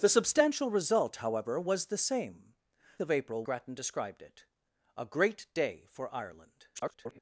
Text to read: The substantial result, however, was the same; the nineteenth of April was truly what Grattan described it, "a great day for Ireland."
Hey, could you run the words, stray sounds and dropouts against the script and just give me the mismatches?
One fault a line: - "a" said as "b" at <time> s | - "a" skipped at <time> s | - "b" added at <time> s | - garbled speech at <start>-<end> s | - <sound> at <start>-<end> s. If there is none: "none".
- "the nineteenth" skipped at 2.5 s
- "was truly what" skipped at 3.5 s
- garbled speech at 6.7-7.2 s